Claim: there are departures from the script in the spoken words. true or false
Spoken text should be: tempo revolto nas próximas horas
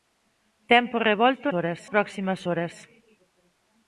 true